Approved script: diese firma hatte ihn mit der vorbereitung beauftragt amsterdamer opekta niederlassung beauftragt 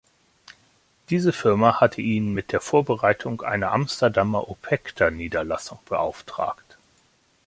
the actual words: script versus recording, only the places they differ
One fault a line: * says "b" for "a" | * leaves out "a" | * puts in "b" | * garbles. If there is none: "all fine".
* says "einer" for "beauftragt"